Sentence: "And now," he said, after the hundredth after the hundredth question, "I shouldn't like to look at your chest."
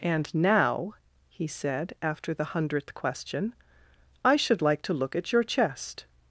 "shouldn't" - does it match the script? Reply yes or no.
no